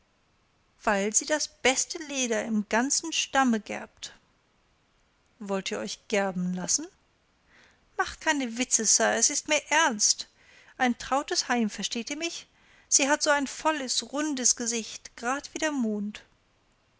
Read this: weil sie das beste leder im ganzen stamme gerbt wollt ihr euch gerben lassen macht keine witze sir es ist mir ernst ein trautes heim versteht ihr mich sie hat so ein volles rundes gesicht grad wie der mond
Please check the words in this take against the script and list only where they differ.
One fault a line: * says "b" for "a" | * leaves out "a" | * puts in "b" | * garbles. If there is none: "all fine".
all fine